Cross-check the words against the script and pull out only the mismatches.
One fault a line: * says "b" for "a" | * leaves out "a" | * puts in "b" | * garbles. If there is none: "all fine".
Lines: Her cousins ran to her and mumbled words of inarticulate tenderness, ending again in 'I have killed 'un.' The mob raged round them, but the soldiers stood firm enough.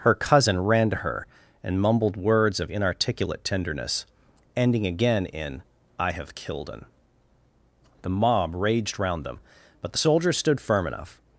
* says "cousin" for "cousins"